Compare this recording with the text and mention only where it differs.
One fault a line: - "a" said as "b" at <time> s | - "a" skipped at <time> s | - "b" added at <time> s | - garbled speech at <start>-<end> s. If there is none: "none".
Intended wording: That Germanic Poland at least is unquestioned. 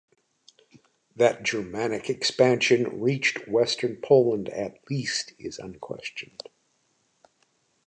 - "expansion reached western" added at 2.1 s